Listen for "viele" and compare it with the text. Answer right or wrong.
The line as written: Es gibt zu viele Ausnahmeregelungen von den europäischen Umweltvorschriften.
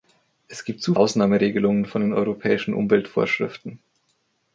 wrong